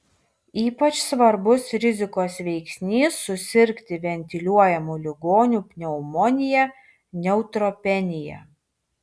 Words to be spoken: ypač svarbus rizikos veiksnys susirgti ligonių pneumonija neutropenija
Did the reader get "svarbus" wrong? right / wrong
right